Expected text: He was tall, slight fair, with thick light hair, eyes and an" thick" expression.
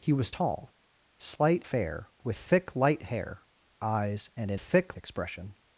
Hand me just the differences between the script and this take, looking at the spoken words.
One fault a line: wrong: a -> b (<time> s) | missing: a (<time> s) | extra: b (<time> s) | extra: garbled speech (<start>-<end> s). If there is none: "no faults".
no faults